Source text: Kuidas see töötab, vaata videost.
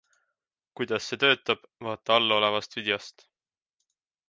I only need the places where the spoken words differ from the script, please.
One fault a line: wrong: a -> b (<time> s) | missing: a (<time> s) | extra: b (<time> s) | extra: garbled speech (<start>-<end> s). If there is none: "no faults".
extra: allolevast (2.2 s)